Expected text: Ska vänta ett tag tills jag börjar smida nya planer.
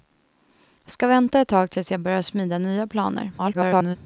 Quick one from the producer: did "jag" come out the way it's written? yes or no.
yes